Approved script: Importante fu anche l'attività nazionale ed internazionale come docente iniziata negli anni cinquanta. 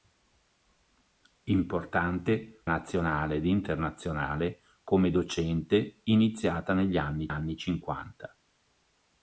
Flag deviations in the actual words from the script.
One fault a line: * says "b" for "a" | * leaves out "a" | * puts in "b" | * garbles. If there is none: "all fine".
* leaves out "fu anche l'attività"
* puts in "anni"